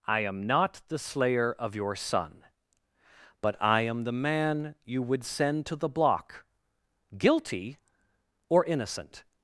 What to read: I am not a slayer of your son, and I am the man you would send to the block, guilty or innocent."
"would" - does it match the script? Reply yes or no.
yes